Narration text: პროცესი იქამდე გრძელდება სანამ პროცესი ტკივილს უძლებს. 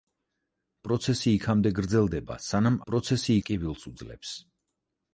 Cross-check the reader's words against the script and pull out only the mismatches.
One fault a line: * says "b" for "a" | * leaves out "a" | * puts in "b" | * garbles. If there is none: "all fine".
all fine